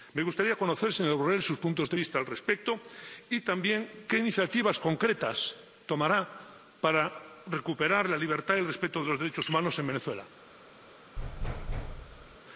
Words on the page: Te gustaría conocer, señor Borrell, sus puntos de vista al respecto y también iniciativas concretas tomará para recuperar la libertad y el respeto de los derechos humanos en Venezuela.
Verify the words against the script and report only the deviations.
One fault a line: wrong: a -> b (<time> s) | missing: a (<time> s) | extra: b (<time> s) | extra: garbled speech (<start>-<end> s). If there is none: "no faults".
wrong: Te -> Me (0.1 s)
extra: qué (4.1 s)